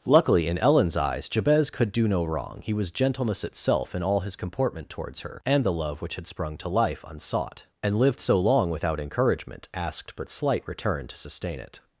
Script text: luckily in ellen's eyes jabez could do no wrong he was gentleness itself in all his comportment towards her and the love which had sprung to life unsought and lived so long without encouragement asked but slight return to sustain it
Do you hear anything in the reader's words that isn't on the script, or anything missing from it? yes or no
no